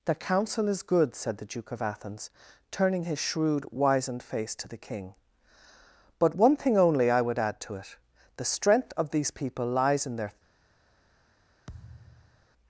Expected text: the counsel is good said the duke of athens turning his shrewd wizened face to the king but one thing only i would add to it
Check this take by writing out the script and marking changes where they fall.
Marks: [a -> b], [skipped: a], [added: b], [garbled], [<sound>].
the counsel is good said the duke of athens turning his shrewd wizened face to the king but one thing only i would add to it [added: the strength of these people lies in their] [thud]